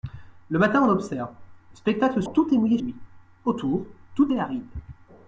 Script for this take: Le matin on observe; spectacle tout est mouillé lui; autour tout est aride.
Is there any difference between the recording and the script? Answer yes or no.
no